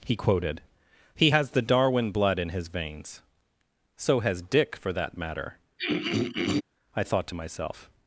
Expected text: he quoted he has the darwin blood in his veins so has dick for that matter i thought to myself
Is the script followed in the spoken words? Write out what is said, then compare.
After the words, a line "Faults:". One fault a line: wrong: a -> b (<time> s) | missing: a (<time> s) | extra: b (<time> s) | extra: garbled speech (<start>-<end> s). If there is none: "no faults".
he quoted he has the darwin blood in his veins so has dick for that matter i thought to myself
Faults:
no faults